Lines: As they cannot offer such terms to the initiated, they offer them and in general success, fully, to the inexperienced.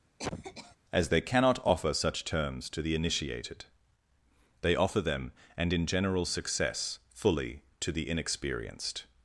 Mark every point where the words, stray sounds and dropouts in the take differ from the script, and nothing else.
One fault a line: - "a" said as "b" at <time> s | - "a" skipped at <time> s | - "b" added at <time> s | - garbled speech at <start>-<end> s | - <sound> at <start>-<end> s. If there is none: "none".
- cough at 0.2-0.8 s